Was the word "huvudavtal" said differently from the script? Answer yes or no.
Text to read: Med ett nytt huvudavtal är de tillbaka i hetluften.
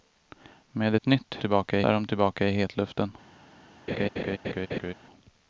yes